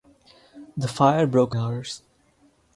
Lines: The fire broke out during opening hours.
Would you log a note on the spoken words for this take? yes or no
yes